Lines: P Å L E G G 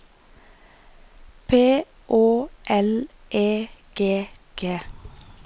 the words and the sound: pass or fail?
pass